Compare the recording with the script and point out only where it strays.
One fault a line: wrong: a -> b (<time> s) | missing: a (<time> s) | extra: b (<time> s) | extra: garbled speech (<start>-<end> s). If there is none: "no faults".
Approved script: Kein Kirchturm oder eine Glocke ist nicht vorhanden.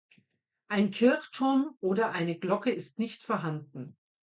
wrong: Kein -> Ein (0.7 s)